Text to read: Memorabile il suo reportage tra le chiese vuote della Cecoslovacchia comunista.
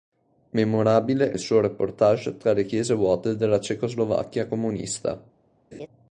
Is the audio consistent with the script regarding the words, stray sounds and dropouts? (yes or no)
no